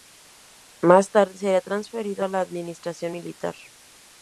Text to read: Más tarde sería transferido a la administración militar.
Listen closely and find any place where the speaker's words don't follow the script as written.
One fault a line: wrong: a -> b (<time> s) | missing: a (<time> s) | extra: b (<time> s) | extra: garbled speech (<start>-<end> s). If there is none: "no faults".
no faults